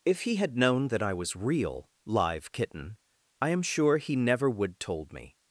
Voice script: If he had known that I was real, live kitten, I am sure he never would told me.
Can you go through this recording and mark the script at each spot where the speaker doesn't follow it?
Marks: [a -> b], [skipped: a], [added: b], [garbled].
If he had known that I was real, live kitten, I am sure he never would told me.